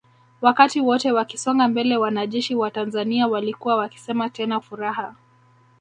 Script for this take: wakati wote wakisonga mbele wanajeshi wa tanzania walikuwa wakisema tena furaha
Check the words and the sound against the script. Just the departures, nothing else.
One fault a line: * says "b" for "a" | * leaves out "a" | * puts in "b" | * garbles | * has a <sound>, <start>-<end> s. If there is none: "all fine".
all fine